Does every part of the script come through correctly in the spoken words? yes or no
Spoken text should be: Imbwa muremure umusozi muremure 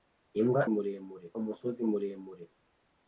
yes